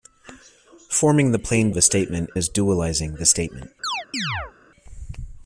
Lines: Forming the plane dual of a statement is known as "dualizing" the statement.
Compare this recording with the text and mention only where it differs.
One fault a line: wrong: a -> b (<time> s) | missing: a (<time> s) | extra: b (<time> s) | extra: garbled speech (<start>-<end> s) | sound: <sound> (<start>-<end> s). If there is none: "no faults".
missing: dual (1.7 s)
missing: is known (2.3 s)
sound: chirp (3.8-4.5 s)